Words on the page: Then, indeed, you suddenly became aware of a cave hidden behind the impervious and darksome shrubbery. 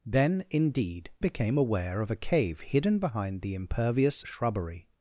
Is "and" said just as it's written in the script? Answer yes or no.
no